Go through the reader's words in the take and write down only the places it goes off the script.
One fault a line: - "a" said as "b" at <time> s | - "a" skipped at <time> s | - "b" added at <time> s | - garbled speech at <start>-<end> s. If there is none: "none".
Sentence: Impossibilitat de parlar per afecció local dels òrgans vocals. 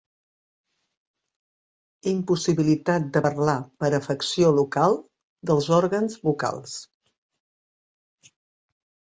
none